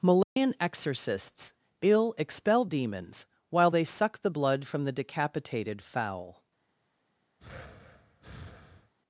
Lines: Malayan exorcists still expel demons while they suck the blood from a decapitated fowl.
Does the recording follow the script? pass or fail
fail